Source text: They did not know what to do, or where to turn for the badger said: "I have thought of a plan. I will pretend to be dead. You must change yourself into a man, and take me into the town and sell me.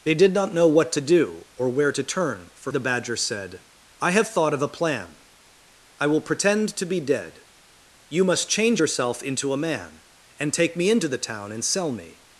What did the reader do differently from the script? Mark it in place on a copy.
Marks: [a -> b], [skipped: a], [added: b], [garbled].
They did not know what to do, or where to turn for the badger said: "I have thought of a plan. I will pretend to be dead. You must change yourself into a man, and take me into the town and sell me.